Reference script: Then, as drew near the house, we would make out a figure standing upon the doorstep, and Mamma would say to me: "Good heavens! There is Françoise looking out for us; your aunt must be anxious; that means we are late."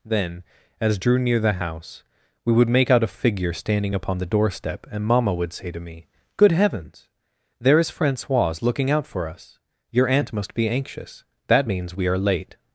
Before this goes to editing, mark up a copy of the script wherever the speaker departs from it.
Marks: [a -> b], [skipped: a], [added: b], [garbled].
Then, as drew near the house, we would make out a figure standing upon the doorstep, and Mamma would say to me: "Good heavens! There is Françoise looking out for us; your aunt must be anxious; that means we are late."